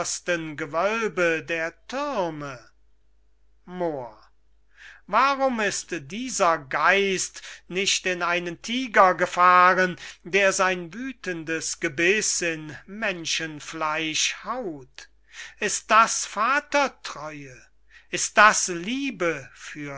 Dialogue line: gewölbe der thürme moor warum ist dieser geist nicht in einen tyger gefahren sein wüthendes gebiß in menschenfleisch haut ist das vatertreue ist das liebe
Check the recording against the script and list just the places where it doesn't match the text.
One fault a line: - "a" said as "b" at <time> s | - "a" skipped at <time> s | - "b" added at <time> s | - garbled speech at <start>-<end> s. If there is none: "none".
- "der" added at 10.2 s